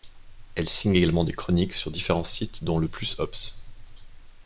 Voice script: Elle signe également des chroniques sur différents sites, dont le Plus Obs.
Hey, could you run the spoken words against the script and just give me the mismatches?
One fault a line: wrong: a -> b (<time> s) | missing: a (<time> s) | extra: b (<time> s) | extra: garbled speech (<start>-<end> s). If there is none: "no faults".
no faults